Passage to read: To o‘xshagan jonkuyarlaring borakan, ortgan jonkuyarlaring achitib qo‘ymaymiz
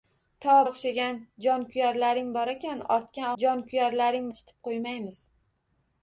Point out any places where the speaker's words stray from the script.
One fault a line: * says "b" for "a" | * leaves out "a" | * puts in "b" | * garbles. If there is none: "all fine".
all fine